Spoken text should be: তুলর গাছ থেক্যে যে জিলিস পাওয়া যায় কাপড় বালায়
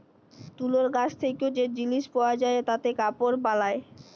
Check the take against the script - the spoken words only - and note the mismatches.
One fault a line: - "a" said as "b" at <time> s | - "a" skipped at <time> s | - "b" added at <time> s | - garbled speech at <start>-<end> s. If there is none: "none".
- "তাতে" added at 2.7 s